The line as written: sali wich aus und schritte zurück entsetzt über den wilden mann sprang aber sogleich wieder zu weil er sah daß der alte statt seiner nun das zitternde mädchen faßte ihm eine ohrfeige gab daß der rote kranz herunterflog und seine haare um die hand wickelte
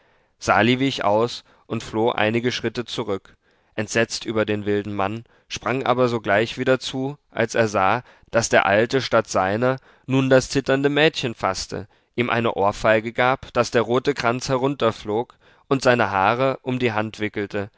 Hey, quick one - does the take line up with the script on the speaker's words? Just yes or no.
no